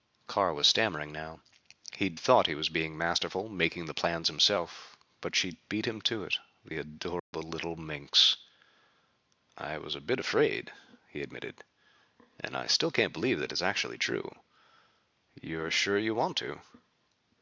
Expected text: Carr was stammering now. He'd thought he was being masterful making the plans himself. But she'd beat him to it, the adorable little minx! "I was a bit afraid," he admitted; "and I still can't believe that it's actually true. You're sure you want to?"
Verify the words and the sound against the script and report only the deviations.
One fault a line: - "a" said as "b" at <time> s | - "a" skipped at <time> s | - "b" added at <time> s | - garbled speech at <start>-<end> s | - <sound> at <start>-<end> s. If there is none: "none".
- dropout at 7.2-7.3 s